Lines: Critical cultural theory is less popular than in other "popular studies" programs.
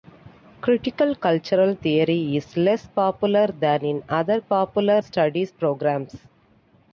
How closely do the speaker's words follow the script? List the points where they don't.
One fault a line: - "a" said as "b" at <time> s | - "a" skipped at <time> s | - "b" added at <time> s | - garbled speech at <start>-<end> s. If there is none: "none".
none